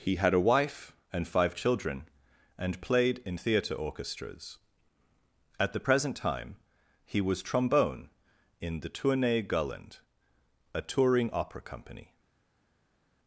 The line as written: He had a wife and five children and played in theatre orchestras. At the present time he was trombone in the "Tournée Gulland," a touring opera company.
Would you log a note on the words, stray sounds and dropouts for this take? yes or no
no